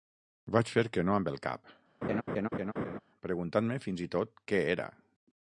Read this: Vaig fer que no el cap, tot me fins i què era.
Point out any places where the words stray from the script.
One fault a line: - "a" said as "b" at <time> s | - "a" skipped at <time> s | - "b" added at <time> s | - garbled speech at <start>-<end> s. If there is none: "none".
- "amb" added at 1.2 s
- "tot" said as "preguntant" at 3.3 s
- "tot" added at 4.2 s